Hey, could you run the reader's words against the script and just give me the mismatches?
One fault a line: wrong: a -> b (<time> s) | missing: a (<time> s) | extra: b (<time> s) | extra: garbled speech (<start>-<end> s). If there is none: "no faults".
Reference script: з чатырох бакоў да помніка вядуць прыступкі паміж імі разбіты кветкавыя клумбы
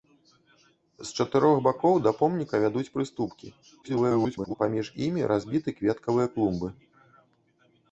extra: garbled speech (3.8-4.6 s)